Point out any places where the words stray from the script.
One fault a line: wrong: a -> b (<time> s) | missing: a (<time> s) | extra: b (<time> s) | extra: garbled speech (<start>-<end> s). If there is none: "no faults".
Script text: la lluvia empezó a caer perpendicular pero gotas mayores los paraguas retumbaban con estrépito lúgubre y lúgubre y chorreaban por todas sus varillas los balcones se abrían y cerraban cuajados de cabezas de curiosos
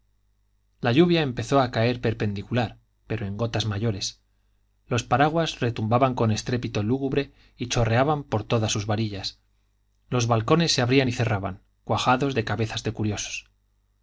extra: en (3.3 s)
missing: lúgubre y (7.7 s)